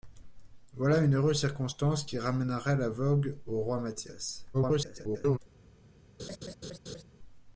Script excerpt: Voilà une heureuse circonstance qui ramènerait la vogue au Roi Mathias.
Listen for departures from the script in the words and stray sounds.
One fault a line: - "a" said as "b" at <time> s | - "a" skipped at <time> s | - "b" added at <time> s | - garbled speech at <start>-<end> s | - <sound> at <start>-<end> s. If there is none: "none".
- garbled speech at 4.5-5.4 s
- laugh at 6.2-7.0 s